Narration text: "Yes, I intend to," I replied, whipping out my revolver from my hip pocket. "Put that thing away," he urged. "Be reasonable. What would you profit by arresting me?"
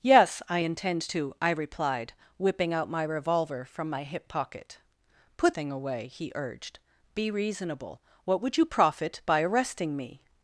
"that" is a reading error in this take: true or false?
true